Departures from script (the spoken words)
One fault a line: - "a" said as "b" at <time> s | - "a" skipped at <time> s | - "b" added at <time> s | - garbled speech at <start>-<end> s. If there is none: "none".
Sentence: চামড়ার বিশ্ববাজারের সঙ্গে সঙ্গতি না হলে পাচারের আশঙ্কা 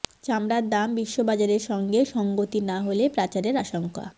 - "দাম" added at 0.7 s